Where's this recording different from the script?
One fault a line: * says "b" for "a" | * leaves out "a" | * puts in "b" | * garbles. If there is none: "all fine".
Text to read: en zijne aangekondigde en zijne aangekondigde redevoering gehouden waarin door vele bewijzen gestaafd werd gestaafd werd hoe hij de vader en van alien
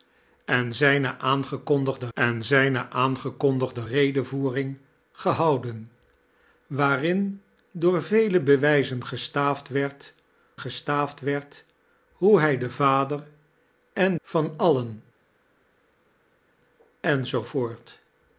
all fine